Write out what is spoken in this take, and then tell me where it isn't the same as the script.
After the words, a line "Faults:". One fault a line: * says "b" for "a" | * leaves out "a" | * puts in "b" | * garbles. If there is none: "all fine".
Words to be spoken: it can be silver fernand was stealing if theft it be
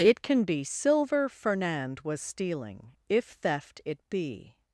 it can be silver fernand was stealing if theft it be
Faults:
all fine